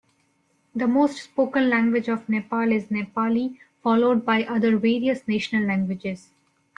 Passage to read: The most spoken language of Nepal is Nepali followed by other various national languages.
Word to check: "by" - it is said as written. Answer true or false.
true